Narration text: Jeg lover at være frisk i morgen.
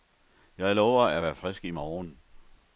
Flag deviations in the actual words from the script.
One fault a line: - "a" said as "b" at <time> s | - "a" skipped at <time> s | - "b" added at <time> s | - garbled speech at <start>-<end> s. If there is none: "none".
none